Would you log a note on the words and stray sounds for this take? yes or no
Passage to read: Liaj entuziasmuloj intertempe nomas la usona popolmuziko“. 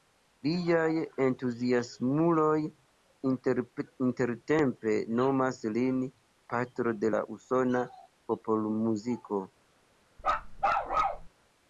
yes